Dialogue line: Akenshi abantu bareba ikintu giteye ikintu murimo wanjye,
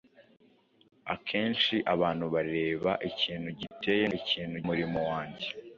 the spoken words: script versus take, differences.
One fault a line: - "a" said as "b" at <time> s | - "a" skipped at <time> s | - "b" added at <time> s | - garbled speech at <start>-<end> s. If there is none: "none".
none